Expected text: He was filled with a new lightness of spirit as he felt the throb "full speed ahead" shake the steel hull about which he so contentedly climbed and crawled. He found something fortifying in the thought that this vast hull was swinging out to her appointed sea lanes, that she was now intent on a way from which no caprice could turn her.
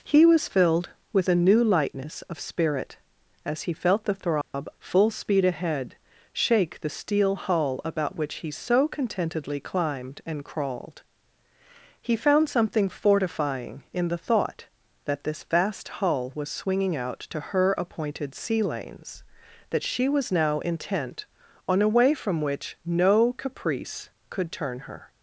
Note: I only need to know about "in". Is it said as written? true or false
true